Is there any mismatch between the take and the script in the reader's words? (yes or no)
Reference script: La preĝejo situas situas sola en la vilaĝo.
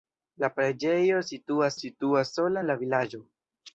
no